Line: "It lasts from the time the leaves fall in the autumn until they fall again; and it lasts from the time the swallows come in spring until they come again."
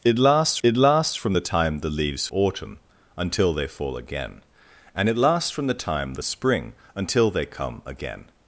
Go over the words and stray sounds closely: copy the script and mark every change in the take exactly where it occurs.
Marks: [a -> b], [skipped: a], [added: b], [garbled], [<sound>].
"It lasts [added: it lasts] from the time the leaves [skipped: fall in the] autumn until they fall again; and it lasts from the time the [skipped: swallows come in] spring until they come again."